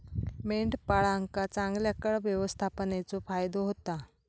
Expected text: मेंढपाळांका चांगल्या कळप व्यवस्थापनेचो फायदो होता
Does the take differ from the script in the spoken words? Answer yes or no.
no